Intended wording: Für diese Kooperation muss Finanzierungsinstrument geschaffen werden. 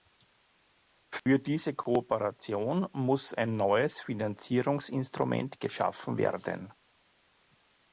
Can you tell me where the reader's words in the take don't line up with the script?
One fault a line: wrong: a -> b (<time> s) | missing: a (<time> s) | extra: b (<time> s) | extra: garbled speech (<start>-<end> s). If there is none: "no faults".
extra: ein neues (3.4 s)